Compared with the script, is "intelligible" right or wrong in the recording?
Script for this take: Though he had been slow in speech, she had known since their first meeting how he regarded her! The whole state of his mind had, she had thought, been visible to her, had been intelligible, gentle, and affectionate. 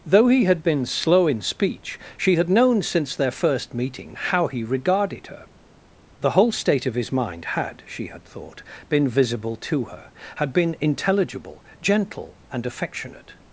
right